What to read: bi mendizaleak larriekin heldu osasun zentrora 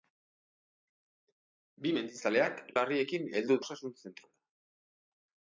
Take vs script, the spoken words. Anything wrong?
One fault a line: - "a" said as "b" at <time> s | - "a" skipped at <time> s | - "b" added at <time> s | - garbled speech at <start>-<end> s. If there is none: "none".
none